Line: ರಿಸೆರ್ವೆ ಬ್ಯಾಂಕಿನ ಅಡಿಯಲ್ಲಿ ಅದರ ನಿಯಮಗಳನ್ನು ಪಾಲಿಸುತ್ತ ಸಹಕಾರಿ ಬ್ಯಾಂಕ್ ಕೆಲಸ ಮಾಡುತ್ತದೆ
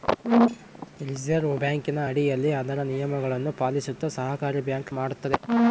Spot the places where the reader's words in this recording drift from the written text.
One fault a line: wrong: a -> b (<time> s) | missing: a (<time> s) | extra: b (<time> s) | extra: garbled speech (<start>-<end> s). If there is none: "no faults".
missing: ಕೆಲಸ (4.9 s)